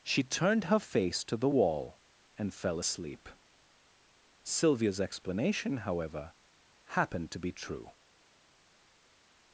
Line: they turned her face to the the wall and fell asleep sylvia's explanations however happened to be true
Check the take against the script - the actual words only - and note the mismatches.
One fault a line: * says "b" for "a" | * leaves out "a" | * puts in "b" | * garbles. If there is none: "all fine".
* says "she" for "they"
* leaves out "the"
* says "explanation" for "explanations"